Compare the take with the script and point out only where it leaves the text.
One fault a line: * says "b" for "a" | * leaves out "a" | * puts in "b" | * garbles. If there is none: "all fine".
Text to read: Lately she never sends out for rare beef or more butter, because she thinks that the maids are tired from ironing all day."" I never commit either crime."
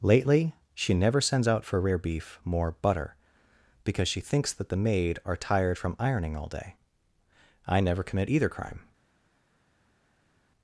* leaves out "or"
* says "maid" for "maids"